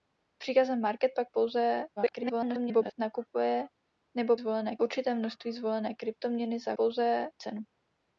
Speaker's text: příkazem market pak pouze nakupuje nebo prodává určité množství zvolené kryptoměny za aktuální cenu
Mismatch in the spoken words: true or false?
true